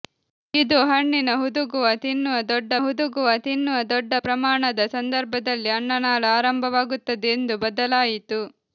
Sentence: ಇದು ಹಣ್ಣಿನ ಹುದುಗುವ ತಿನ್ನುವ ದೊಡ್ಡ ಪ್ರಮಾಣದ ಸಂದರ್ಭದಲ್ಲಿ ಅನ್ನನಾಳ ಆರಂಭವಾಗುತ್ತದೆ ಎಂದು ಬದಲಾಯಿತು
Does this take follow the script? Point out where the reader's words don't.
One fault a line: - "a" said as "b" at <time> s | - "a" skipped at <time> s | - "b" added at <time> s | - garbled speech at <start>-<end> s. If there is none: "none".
- "ಹುದುಗುವ ತಿನ್ನುವ ದೊಡ್ಡ" added at 2.8 s